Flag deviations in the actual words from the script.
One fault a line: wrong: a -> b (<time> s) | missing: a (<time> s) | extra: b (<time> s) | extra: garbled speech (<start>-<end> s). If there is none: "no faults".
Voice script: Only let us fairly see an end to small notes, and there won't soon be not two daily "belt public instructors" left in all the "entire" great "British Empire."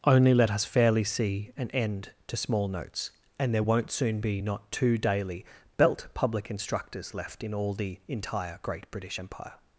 no faults